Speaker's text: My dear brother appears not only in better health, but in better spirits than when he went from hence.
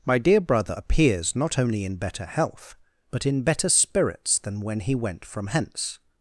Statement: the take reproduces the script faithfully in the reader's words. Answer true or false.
true